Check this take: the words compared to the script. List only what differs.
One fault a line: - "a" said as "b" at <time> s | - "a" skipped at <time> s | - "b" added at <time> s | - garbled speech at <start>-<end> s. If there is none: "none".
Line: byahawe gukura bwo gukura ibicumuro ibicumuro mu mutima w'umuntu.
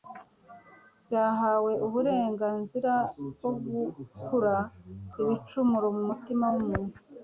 - "gukura" said as "uburenganzira" at 1.9 s
- "ibicumuro" skipped at 5.9 s